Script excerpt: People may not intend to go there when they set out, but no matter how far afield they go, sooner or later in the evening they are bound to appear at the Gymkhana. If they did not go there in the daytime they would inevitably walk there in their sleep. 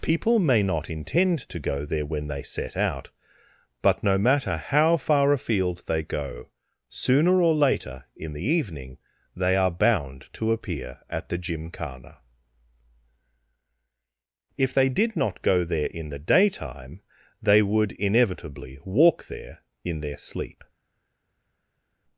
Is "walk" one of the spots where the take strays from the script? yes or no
no